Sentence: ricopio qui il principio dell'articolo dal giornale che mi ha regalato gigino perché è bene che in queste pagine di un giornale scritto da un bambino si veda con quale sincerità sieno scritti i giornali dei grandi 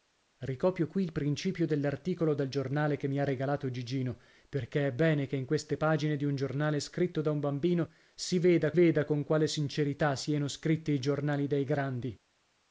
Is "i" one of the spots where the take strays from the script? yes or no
no